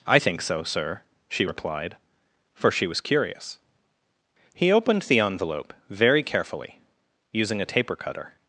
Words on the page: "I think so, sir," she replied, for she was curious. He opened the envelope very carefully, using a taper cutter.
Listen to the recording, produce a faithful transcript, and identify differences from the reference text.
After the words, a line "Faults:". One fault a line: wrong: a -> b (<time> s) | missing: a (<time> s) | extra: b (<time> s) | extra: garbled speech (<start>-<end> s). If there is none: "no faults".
"I think so, sir," she replied, for she was curious. He opened the envelope very carefully, using a taper cutter.
Faults:
no faults